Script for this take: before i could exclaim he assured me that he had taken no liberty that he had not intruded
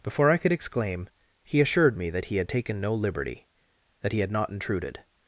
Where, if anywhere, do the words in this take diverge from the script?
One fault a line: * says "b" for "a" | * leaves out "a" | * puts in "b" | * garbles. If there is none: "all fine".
all fine